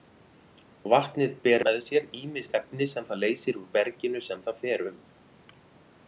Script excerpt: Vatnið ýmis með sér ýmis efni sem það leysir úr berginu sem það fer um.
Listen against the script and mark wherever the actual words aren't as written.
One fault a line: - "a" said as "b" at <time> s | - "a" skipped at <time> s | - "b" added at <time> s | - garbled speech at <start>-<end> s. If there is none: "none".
- "ýmis" said as "ber" at 1.4 s